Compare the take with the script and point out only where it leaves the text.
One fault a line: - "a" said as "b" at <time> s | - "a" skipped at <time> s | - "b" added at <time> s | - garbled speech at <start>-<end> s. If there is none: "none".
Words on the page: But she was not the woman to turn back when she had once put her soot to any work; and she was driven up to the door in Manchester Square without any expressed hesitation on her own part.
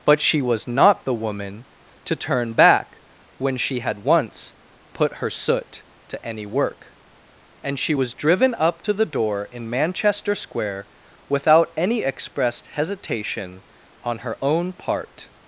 none